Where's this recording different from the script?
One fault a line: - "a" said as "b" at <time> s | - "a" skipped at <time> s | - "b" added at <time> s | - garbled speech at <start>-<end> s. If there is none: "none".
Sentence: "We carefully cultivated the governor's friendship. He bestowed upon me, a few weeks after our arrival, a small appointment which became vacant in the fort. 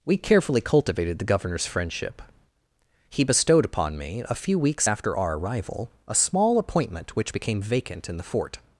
none